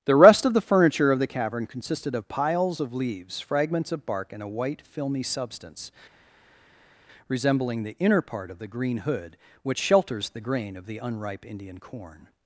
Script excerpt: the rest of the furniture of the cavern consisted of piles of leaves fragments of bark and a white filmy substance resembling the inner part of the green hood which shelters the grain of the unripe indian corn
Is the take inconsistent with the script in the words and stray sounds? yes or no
no